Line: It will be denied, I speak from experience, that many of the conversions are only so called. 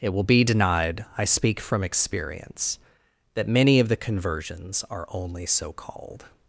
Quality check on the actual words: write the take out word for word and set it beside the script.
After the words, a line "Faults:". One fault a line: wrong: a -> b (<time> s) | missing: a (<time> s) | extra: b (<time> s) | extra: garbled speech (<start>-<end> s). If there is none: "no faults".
It will be denied, I speak from experience, that many of the conversions are only so called.
Faults:
no faults